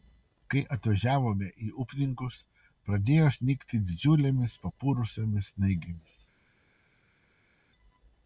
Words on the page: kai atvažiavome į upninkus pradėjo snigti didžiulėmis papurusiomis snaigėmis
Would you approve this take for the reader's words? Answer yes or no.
yes